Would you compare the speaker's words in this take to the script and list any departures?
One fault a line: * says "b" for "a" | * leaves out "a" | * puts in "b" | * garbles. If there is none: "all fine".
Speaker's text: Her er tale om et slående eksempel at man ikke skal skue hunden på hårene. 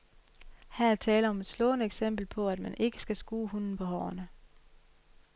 * puts in "på"